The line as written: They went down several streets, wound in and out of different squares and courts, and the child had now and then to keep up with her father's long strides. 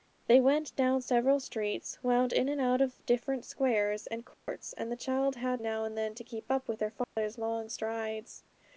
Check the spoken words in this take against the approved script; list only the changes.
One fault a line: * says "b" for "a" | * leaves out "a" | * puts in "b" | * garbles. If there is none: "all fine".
all fine